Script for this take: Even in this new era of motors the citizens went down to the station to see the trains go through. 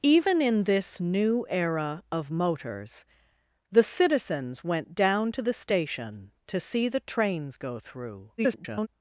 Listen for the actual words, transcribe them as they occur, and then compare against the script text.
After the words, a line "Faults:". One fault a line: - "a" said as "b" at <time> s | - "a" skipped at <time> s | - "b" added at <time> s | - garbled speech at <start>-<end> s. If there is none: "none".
Even in this new era of motors the citizens went down to the station to see the trains go through. [garbled]
Faults:
- garbled speech at 8.4-8.9 s